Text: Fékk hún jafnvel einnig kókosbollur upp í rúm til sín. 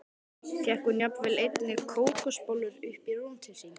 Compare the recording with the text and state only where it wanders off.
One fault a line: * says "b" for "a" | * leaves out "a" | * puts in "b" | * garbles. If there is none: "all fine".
all fine